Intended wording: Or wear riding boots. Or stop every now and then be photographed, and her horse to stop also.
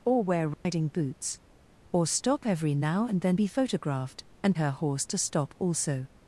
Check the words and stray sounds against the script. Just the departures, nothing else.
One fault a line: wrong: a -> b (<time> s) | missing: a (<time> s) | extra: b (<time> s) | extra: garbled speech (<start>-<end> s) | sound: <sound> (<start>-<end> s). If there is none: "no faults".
sound: dropout (0.5-0.6 s)